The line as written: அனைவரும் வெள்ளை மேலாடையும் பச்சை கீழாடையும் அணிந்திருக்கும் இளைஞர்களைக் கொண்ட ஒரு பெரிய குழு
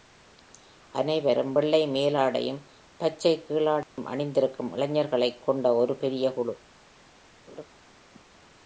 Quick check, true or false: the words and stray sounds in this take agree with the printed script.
false